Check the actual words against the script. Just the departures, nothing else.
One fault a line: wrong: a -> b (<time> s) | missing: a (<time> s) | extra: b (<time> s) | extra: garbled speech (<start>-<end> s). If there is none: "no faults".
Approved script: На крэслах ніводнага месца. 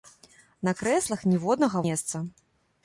no faults